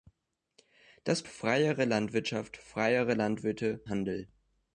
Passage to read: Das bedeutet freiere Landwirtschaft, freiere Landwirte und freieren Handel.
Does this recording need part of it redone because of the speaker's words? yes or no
yes